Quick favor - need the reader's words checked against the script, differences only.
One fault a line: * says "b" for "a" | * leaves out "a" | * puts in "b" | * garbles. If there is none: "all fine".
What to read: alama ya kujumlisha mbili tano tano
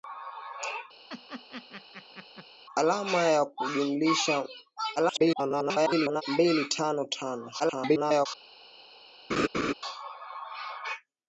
* garbles
* garbles